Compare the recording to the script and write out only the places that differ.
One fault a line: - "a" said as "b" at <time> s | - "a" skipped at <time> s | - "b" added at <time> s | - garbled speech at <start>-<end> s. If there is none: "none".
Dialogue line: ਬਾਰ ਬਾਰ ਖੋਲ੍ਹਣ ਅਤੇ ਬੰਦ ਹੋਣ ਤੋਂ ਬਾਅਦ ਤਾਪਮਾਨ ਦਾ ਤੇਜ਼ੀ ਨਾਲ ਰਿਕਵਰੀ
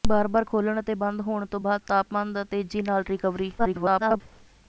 - garbled speech at 3.6-4.2 s